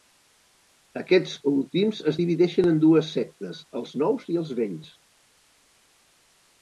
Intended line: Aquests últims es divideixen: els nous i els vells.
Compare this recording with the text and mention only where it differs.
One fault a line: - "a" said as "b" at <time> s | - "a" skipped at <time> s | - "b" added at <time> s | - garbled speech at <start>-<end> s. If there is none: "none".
- "en dues sectes" added at 2.7 s